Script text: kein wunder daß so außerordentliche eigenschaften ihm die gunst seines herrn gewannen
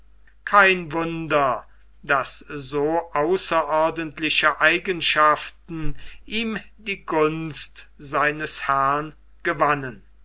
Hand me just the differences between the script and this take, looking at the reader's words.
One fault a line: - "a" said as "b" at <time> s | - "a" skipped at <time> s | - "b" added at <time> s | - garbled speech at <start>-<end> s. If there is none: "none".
none